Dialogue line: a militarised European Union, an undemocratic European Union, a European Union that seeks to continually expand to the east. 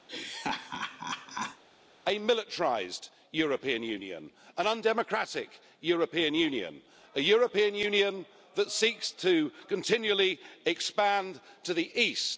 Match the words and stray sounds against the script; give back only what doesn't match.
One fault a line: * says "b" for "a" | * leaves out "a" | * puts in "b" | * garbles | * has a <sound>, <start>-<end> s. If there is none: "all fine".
* has a laugh, 0.1-1.6 s